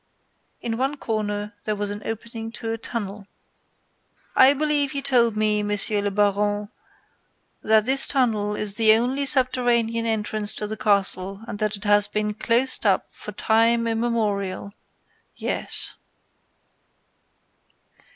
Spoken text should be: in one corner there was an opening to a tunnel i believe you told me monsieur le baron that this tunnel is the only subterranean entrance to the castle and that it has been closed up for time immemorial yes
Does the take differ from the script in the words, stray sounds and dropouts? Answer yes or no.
no